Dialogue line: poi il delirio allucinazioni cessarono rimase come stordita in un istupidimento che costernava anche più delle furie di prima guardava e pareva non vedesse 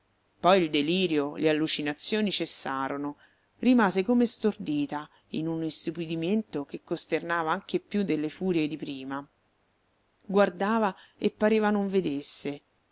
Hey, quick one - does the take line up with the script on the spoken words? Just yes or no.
no